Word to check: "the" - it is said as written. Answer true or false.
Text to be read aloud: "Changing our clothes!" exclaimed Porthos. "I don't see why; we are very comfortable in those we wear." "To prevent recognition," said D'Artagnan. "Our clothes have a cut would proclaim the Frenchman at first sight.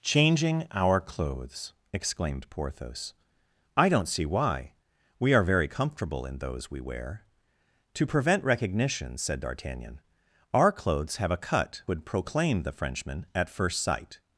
true